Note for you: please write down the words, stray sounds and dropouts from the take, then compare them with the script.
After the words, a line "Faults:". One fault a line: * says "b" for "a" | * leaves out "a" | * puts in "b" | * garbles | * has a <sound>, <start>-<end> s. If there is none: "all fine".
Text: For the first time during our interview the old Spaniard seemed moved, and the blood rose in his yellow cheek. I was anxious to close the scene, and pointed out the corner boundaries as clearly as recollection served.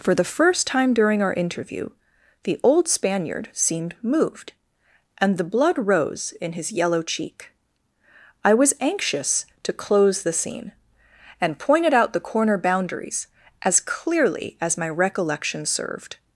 For the first time during our interview the old Spaniard seemed moved, and the blood rose in his yellow cheek. I was anxious to close the scene, and pointed out the corner boundaries as clearly as my recollection served.
Faults:
* puts in "my"